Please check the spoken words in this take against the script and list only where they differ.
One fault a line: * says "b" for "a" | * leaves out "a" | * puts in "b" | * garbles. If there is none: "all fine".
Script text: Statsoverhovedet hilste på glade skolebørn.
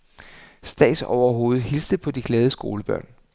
* puts in "de"